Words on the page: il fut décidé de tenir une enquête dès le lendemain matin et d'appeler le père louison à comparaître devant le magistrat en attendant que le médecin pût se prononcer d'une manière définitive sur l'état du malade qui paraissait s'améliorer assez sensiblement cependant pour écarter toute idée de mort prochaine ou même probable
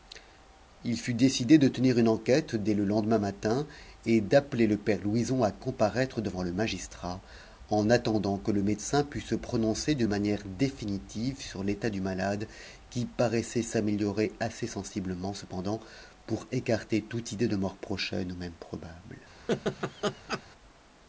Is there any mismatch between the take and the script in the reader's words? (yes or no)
no